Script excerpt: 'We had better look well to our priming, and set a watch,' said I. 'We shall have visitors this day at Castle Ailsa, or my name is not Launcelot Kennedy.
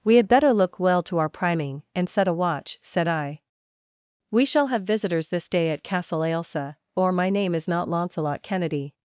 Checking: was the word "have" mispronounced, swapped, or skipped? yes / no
no